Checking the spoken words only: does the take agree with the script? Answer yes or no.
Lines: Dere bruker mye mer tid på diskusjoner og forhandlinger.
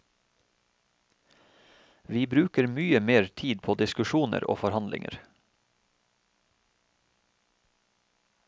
no